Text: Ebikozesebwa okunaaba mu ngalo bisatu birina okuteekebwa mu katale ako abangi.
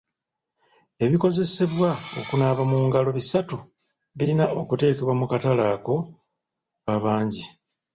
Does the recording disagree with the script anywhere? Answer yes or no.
no